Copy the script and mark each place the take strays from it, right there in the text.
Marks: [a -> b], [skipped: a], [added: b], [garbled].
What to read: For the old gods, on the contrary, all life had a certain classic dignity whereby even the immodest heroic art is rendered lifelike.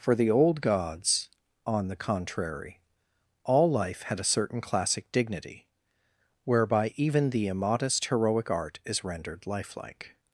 For the old gods, on the contrary, all life had a certain classic dignity whereby even the immodest heroic art is rendered lifelike.